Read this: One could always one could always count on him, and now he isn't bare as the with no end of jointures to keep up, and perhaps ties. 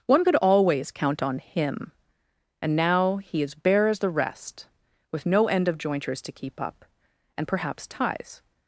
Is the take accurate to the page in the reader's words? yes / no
no